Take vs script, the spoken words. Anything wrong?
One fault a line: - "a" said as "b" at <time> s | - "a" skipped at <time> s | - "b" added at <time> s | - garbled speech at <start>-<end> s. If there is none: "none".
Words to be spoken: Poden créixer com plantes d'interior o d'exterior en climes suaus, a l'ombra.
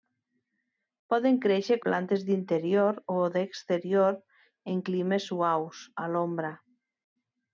- "com" skipped at 1.8 s